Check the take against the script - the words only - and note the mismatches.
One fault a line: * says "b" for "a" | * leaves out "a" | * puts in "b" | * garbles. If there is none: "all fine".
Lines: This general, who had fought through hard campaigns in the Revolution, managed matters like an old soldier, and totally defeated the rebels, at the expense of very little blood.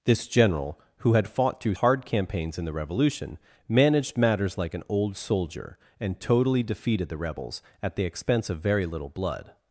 all fine